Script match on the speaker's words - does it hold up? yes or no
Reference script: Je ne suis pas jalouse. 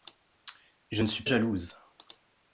no